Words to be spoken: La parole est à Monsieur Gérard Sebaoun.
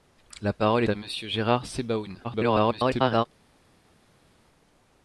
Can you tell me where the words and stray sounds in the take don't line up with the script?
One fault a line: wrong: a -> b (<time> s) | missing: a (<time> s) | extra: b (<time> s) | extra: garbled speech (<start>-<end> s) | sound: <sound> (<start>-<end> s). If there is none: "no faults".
missing: est (0.8 s)
extra: garbled speech (2.2-3.2 s)